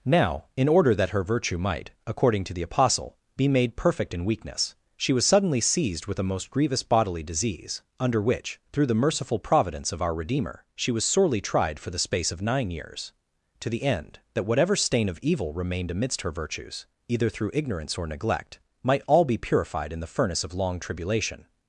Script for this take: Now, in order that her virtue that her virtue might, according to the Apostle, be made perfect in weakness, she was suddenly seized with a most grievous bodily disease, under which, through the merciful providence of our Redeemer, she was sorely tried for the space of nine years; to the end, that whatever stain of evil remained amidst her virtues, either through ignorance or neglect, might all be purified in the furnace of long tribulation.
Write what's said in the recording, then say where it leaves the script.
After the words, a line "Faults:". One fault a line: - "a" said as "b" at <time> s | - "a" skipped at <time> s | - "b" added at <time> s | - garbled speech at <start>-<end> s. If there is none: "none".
Now, in order that her virtue might, according to the Apostle, be made perfect in weakness, she was suddenly seized with a most grievous bodily disease, under which, through the merciful providence of our Redeemer, she was sorely tried for the space of nine years; to the end, that whatever stain of evil remained amidst her virtues, either through ignorance or neglect, might all be purified in the furnace of long tribulation.
Faults:
- "that her virtue" skipped at 1.6 s